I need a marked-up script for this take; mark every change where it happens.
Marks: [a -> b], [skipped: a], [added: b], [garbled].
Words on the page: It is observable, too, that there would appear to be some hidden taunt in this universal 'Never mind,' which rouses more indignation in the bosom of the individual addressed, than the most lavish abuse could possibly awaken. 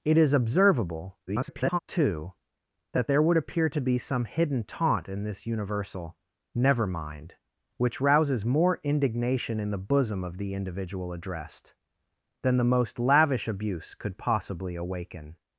It is observable, [garbled] too, that there would appear to be some hidden taunt in this universal 'Never mind,' which rouses more indignation in the bosom of the individual addressed, than the most lavish abuse could possibly awaken.